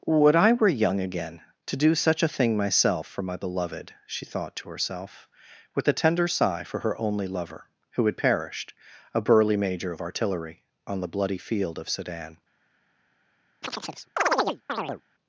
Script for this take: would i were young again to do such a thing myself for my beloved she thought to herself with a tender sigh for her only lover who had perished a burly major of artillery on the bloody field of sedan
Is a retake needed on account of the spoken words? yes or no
no